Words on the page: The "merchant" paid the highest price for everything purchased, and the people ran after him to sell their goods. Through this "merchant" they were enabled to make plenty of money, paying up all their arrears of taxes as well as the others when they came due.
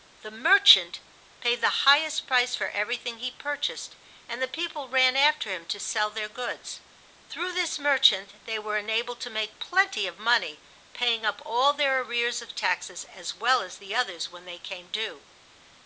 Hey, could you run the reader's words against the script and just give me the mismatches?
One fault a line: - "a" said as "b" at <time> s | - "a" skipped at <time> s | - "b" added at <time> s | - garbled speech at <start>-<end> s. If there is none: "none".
- "he" added at 3.2 s